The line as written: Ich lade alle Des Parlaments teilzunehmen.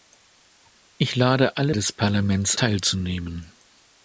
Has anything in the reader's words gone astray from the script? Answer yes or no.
no